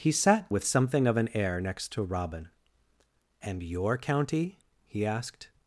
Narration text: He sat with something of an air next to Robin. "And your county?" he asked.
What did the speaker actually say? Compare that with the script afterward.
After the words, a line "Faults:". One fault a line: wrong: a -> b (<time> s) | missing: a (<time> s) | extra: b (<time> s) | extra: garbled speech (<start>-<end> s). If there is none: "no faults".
He sat with something of an air next to Robin. "And your county?" he asked.
Faults:
no faults